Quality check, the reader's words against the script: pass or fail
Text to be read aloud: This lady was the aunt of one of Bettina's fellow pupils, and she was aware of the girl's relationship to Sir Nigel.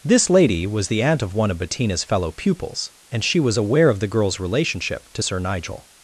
pass